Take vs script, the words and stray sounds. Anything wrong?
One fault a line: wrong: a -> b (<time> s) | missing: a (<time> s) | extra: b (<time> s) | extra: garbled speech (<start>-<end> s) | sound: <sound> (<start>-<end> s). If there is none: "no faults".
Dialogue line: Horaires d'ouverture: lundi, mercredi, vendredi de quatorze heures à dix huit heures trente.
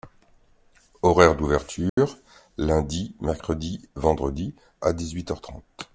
sound: dropout (1.9-2.0 s)
missing: de quatorze heures (4.6 s)